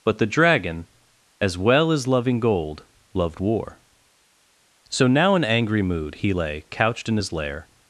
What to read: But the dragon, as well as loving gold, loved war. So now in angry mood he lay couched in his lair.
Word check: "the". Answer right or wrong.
right